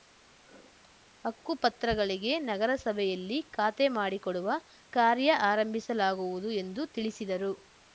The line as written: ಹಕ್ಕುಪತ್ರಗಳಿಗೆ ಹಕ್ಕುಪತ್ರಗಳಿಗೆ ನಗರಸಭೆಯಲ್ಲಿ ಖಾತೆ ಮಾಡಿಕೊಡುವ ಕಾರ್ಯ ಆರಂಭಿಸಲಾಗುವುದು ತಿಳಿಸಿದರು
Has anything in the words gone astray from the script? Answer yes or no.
yes